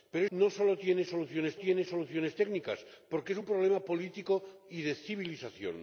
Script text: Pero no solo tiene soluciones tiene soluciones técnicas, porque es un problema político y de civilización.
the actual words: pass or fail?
pass